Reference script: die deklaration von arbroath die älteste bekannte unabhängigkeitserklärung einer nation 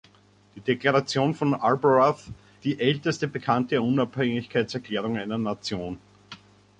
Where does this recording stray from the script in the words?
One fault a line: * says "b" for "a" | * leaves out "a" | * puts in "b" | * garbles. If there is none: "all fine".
all fine